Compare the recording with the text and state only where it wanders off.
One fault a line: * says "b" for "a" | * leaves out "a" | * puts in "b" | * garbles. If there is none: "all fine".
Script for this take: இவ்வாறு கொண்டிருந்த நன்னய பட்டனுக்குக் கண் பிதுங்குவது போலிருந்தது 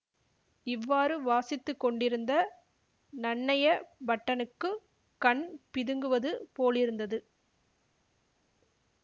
* puts in "வாசித்து"